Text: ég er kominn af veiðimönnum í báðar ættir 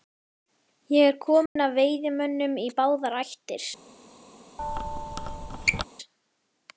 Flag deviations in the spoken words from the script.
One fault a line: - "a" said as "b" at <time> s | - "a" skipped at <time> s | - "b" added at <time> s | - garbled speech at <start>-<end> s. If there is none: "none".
none